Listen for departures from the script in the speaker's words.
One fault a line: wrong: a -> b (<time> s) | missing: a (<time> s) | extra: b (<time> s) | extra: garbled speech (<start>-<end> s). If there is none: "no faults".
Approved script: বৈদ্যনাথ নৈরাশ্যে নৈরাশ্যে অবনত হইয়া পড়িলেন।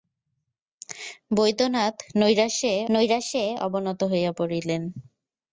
no faults